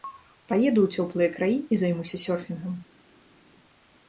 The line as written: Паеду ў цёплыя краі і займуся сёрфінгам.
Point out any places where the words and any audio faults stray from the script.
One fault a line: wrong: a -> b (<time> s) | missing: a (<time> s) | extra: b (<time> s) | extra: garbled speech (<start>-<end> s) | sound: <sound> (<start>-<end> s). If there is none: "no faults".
no faults